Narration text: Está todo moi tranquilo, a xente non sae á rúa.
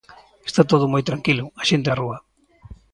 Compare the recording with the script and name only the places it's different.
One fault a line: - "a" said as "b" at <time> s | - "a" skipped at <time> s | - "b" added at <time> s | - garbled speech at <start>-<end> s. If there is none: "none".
- "non sae" skipped at 1.9 s